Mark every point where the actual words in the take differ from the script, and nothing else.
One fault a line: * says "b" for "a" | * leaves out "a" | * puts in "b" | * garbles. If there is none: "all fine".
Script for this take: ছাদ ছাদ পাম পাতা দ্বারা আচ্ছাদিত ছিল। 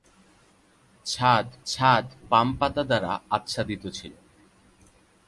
all fine